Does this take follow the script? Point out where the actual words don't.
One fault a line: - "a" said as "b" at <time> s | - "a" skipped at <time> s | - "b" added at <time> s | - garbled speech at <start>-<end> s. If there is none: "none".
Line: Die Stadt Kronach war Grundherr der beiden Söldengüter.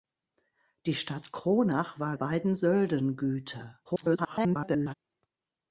- "Grundherr der" skipped at 2.2 s
- garbled speech at 3.9-4.9 s